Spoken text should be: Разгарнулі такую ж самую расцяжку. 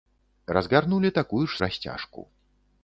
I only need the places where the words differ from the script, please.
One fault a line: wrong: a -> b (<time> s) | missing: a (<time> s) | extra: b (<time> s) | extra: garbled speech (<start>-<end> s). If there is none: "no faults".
missing: самую (1.6 s)